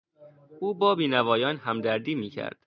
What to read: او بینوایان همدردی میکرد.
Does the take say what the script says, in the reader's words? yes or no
no